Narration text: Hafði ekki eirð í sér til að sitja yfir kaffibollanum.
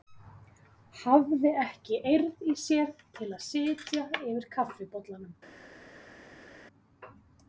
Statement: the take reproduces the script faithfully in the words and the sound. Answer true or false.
true